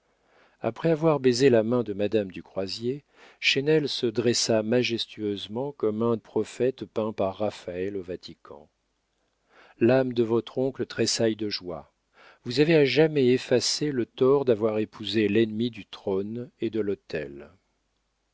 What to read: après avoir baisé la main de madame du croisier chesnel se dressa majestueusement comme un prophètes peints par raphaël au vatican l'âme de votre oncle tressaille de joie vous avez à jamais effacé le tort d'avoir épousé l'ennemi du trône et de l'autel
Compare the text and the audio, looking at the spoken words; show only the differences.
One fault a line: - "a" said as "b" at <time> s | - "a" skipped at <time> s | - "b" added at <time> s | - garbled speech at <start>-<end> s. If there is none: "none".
none